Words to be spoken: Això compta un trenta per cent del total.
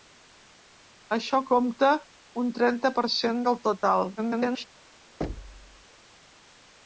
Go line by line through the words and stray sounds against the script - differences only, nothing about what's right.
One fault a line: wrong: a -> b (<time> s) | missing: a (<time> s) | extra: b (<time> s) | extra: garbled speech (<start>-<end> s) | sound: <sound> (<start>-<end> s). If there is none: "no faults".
extra: garbled speech (4.2-4.7 s)
sound: thud (5.2-5.9 s)